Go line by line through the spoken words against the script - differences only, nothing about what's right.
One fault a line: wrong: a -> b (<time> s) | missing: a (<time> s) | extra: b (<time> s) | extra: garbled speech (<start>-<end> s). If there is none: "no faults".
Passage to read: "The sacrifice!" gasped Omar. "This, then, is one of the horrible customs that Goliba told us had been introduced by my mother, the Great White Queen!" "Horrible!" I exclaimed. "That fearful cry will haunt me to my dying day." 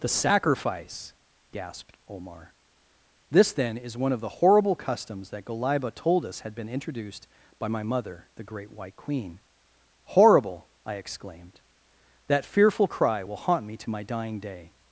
no faults